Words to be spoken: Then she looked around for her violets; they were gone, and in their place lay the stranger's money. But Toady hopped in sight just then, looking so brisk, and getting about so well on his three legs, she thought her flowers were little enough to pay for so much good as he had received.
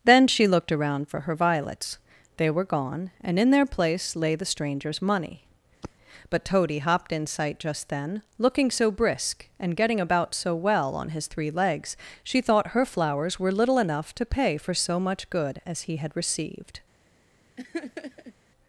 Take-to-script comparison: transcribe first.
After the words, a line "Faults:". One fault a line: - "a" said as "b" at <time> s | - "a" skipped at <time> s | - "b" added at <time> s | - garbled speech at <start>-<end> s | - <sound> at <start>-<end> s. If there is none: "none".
Then she looked around for her violets; they were gone, and in their place lay the stranger's money. But Toady hopped in sight just then, looking so brisk, and getting about so well on his three legs, she thought her flowers were little enough to pay for so much good as he had received.
Faults:
- sigh at 5.8-5.9 s
- laugh at 17.6-18.3 s